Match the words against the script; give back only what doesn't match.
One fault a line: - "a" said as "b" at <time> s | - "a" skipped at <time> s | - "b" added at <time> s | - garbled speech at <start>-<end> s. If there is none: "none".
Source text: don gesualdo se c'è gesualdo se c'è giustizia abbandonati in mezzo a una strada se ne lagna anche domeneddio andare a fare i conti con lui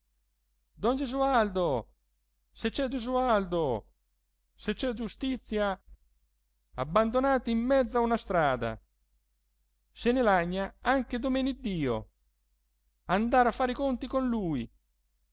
none